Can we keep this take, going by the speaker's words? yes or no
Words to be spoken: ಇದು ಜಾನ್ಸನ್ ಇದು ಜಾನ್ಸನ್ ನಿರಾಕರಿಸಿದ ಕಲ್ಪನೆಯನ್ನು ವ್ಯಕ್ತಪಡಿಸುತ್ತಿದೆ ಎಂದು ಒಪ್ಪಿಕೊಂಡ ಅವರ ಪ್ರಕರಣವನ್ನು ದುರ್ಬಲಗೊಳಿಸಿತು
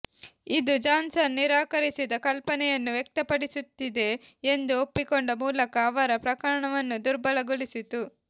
no